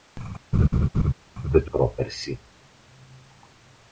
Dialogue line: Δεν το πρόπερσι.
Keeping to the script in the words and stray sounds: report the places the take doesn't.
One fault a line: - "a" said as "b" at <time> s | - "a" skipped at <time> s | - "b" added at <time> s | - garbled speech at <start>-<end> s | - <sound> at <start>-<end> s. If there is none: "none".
- laugh at 0.5-1.1 s